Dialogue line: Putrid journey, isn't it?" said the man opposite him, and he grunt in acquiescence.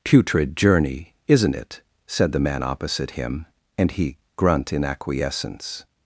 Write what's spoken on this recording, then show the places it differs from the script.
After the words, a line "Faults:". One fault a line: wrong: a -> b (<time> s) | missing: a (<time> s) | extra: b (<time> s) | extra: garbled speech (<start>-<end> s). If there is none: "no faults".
Putrid journey, isn't it?" said the man opposite him, and he grunt in acquiescence.
Faults:
no faults